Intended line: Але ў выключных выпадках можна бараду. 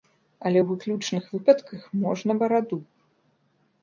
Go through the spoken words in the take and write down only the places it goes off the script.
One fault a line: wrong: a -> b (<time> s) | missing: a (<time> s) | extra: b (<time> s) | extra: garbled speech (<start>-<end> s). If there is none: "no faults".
no faults